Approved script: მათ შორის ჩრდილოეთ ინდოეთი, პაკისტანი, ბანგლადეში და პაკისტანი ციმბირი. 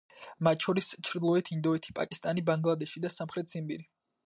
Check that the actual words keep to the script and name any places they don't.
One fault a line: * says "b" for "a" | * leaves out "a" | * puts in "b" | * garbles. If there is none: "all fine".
* says "სამხრეთ" for "პაკისტანი"